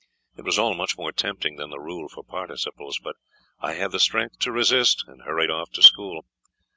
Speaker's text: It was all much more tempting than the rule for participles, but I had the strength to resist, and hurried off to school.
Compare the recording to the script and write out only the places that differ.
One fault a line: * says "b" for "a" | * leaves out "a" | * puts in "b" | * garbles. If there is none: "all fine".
all fine